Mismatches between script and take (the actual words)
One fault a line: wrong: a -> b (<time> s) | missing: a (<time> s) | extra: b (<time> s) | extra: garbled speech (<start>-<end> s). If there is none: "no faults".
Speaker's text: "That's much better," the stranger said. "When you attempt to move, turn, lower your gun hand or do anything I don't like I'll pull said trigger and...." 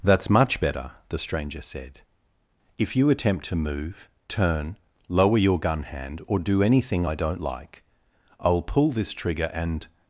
wrong: When -> If (2.8 s)
wrong: said -> this (8.9 s)